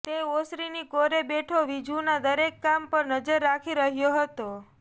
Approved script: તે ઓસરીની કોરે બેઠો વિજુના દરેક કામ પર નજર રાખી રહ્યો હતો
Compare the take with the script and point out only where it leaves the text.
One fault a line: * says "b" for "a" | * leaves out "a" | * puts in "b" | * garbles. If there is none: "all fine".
all fine